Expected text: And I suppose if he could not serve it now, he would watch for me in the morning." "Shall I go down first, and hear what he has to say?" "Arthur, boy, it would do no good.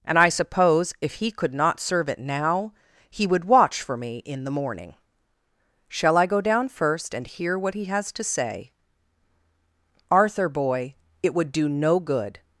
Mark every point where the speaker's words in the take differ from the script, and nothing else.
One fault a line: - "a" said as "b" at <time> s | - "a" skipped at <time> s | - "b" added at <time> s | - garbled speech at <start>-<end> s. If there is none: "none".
none